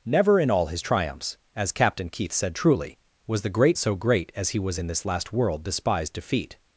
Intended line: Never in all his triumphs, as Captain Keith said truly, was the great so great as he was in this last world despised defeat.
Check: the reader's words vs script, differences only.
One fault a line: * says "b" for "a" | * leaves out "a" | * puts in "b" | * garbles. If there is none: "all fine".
all fine